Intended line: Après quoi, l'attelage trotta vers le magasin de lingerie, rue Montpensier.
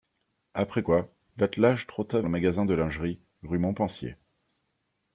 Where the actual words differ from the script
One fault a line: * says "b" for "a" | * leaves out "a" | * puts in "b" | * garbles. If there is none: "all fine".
* leaves out "vers"